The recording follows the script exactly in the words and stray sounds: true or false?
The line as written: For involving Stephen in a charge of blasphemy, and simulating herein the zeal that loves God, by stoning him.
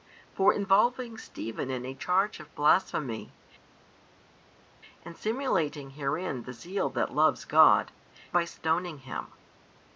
true